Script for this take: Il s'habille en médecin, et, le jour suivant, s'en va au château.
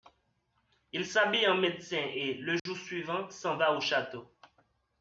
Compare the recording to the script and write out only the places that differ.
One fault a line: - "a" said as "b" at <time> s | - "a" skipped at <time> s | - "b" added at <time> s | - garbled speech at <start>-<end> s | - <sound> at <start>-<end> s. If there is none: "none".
- dropout at 2.6-2.7 s